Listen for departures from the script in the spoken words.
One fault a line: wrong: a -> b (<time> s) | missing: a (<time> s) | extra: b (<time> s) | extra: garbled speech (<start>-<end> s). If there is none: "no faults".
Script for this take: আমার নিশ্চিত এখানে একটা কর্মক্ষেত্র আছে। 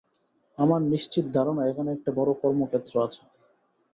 extra: ধারণা (1.4 s)
extra: বড় (2.2 s)